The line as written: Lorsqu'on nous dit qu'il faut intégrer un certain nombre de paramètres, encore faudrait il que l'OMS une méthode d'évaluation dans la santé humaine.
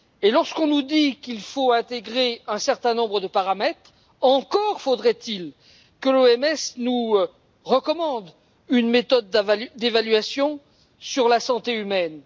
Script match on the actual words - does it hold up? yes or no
no